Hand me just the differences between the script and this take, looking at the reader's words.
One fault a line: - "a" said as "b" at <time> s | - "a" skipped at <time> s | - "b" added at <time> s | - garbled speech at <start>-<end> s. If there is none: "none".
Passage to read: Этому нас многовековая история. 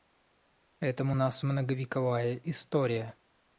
none